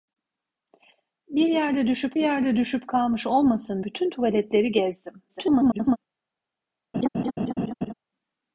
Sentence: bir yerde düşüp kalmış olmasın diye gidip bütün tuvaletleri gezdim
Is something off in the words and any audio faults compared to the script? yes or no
yes